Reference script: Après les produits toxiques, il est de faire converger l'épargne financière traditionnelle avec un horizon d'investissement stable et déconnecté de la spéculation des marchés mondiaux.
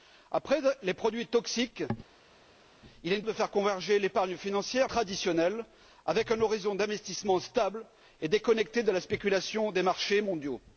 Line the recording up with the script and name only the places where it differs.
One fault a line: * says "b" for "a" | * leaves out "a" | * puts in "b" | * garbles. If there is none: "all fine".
all fine